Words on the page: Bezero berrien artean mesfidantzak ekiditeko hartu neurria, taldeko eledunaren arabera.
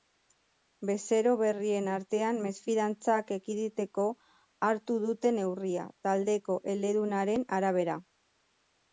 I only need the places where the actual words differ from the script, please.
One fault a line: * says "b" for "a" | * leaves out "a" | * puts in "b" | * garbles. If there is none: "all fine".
* puts in "dute"